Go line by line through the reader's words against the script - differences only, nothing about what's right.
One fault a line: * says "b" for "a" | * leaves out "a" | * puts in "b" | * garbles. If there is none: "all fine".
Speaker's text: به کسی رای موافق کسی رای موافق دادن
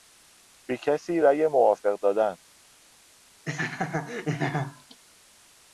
* leaves out "کسی رای موافق"